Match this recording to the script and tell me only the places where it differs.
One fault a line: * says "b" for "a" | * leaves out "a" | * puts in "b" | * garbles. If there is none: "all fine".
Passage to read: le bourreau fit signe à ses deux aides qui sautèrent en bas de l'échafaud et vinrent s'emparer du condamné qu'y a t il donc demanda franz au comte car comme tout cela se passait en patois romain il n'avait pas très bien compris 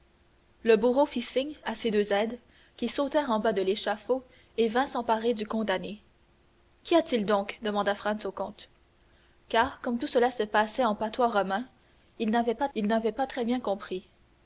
* puts in "il n'avait pas"